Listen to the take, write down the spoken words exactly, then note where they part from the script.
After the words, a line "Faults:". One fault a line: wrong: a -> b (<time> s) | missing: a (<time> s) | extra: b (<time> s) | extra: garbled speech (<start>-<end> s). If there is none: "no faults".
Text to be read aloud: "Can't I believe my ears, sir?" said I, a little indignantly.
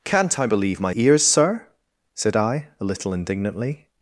"Can't I believe my ears, sir?" said I, a little indignantly.
Faults:
no faults